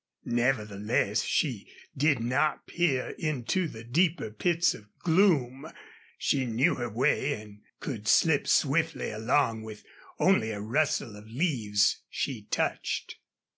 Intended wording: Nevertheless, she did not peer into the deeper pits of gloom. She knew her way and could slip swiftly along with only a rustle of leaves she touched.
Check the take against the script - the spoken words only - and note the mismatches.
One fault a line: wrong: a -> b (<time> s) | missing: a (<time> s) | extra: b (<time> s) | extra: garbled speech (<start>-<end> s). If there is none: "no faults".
no faults